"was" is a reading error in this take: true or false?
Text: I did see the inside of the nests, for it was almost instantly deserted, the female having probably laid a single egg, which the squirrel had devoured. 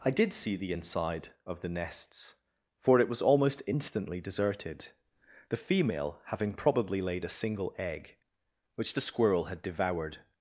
false